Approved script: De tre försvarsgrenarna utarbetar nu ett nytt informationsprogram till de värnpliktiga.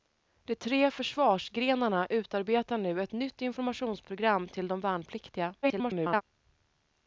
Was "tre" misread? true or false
false